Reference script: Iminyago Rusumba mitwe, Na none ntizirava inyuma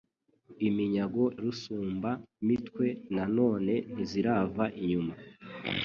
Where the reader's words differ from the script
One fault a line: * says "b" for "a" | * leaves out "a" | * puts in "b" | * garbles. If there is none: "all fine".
all fine